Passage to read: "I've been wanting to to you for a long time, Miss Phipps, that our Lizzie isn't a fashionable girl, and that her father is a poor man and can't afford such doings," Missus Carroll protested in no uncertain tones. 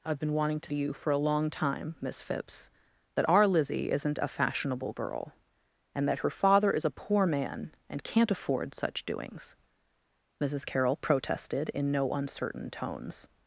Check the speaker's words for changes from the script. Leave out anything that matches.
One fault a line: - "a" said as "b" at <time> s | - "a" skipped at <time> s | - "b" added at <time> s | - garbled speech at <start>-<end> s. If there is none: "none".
none